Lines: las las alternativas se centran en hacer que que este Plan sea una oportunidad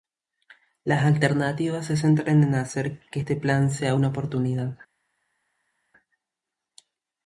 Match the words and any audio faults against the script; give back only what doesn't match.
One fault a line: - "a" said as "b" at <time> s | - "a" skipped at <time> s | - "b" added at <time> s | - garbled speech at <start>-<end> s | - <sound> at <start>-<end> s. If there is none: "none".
- "las" skipped at 1.1 s
- "que" skipped at 3.2 s